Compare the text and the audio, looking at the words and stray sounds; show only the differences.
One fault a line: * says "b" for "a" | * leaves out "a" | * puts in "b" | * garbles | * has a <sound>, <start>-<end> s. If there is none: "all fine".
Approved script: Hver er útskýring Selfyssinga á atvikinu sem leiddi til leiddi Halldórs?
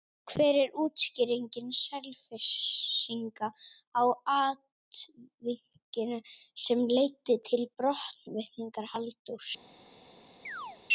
* says "brottvikningar" for "leiddi"
* has a chirp, 10.4-10.8 s